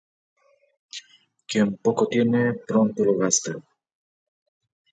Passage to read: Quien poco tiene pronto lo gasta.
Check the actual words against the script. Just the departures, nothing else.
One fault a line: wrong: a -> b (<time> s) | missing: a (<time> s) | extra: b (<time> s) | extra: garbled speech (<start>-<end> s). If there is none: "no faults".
no faults